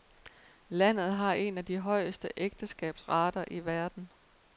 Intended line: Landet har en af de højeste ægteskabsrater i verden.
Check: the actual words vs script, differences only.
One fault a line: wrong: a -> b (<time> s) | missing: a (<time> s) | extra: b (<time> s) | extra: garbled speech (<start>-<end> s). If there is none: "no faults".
no faults